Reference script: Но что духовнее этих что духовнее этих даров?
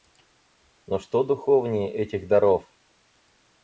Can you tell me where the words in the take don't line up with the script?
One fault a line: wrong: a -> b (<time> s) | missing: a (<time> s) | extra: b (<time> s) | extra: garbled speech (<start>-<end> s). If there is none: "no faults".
missing: что духовнее этих (2.3 s)